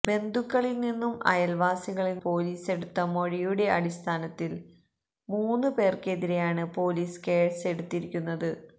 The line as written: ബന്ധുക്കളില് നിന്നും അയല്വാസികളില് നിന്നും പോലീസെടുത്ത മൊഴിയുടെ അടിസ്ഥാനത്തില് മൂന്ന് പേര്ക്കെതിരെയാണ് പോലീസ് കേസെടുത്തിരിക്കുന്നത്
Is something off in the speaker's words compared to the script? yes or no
yes